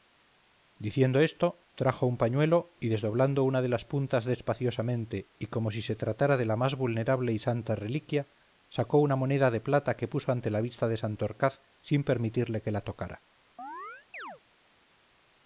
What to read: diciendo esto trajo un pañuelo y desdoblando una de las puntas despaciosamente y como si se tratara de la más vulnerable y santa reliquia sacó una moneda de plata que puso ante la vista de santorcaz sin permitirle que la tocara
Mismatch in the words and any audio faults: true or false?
true